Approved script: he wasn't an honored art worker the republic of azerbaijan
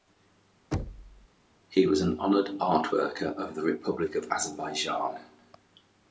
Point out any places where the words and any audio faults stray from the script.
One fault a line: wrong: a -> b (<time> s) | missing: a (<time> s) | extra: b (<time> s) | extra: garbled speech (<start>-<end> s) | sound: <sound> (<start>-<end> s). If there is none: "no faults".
sound: thud (0.7-1.3 s)
wrong: wasn't -> was (1.8 s)
extra: of (3.3 s)